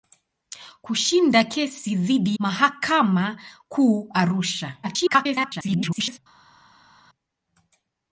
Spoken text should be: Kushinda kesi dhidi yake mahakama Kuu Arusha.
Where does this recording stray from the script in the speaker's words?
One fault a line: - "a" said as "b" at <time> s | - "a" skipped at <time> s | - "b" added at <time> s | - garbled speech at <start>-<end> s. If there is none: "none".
- "yake" skipped at 2.4 s
- garbled speech at 4.8-6.2 s